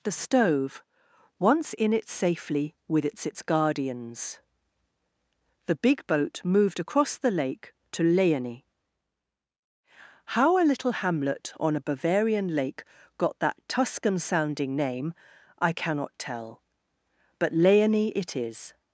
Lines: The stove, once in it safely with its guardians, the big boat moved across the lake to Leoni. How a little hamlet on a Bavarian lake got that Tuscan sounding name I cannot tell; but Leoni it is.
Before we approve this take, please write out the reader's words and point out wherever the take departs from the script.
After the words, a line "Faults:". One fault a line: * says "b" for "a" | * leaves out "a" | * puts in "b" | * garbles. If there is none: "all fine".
The stove, once in it safely with its its guardians, the big boat moved across the lake to Leoni. How a little hamlet on a Bavarian lake got that Tuscan sounding name I cannot tell; but Leoni it is.
Faults:
* puts in "its"